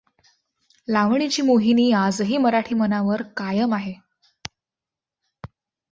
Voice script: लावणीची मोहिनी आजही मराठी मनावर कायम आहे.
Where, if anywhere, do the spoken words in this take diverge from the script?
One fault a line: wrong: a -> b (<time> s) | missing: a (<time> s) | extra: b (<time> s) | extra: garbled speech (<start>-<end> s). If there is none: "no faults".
no faults